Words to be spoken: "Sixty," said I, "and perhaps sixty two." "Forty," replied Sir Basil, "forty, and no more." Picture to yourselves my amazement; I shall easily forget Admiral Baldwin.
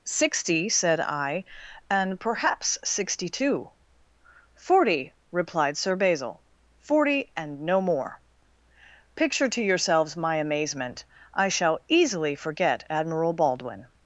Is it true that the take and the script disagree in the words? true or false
false